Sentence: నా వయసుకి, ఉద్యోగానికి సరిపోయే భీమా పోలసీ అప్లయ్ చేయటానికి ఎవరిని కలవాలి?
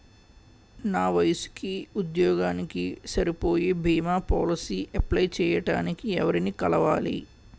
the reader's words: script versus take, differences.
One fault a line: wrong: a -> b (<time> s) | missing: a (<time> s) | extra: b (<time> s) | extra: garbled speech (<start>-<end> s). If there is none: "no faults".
no faults